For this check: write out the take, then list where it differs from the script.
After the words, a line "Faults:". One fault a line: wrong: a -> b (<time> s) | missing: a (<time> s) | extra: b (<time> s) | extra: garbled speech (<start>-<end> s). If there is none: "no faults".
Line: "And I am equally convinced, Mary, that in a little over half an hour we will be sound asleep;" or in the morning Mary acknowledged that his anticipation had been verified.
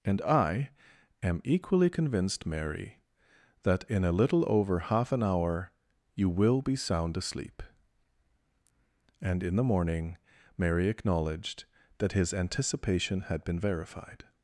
"And I am equally convinced, Mary, that in a little over half an hour you will be sound asleep;" and in the morning Mary acknowledged that his anticipation had been verified.
Faults:
wrong: we -> you (6.2 s)
wrong: or -> and (9.2 s)